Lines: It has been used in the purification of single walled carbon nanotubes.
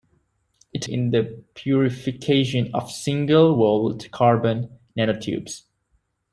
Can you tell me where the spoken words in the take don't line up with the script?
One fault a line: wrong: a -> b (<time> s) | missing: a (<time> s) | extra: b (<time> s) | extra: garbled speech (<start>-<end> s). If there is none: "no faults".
missing: has been used (0.8 s)